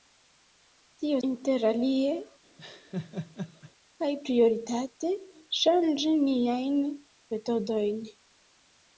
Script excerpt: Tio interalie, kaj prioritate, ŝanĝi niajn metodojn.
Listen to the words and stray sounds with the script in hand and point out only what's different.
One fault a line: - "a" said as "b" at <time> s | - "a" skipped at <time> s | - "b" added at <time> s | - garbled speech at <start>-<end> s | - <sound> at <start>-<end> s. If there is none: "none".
- laugh at 2.6-3.7 s